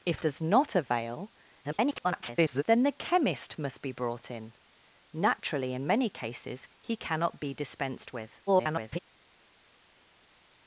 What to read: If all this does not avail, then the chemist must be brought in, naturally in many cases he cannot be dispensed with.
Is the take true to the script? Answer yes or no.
no